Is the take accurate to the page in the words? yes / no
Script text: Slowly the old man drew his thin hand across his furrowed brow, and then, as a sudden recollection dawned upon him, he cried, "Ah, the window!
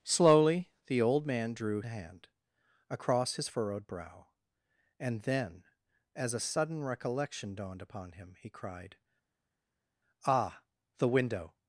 no